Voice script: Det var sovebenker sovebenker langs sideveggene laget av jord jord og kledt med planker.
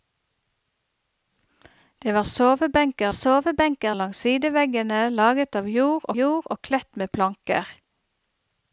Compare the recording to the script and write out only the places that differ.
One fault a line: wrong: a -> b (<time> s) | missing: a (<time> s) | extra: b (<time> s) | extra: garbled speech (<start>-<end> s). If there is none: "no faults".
no faults